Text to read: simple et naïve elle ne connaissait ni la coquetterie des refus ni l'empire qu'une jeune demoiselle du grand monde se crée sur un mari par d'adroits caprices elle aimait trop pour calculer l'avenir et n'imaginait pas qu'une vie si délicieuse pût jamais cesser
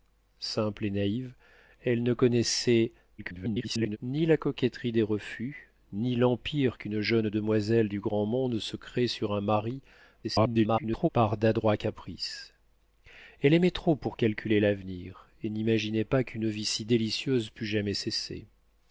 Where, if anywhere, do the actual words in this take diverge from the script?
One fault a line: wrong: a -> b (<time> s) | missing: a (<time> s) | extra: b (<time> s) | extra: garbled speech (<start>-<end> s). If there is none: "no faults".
extra: garbled speech (3.2-4.0 s)
extra: garbled speech (10.2-11.1 s)